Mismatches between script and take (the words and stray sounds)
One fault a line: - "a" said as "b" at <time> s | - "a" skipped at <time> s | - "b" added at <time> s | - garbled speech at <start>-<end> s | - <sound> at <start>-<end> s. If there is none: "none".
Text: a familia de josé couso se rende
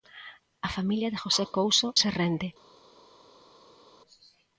none